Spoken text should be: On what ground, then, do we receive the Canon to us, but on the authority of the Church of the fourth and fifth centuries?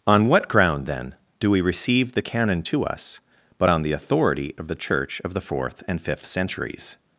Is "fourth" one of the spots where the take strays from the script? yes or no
no